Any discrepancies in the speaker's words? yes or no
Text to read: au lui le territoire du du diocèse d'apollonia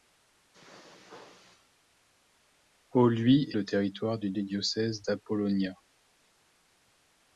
no